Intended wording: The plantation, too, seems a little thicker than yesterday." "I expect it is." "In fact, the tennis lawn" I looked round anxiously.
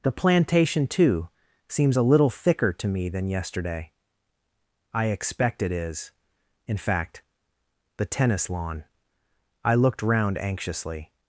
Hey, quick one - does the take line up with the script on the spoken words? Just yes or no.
no